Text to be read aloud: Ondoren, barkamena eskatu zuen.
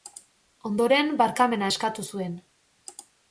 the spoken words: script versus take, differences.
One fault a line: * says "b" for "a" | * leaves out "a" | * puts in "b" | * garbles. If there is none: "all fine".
all fine